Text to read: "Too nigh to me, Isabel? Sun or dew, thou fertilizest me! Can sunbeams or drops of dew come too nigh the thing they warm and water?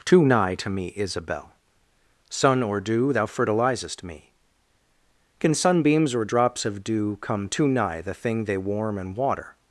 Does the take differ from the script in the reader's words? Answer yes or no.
no